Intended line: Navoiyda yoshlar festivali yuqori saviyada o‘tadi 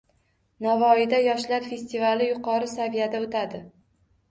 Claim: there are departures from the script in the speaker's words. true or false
false